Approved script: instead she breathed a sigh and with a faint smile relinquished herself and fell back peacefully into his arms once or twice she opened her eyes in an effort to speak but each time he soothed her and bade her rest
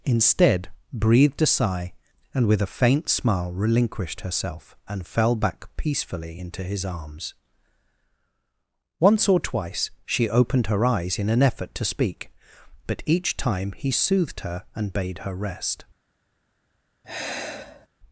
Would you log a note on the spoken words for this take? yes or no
yes